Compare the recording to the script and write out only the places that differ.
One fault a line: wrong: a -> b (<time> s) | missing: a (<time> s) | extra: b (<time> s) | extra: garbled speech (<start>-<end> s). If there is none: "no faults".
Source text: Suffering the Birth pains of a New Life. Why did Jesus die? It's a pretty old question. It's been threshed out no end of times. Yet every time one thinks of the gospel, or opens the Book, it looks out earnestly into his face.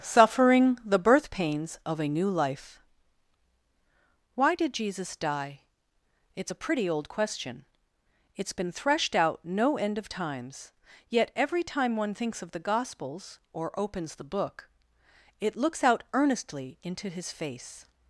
wrong: gospel -> gospels (12.6 s)